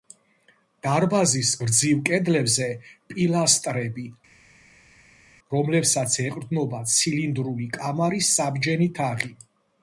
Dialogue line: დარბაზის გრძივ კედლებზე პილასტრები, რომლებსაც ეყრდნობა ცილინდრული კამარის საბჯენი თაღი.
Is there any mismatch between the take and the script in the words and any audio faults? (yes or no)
no